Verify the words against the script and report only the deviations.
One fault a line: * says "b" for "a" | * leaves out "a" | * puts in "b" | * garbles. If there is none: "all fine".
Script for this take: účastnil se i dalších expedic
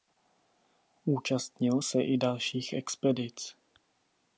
all fine